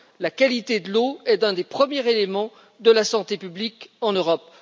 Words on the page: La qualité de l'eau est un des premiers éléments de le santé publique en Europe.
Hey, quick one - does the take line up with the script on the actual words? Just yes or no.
no